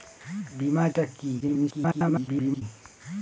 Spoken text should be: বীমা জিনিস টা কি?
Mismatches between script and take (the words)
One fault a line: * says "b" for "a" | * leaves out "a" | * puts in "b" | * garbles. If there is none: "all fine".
* leaves out "জিনিস"
* garbles